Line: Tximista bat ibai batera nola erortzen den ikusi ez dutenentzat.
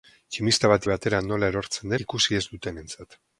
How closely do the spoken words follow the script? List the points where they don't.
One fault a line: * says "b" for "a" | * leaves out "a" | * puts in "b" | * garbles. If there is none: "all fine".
* leaves out "ibai"
* leaves out "den"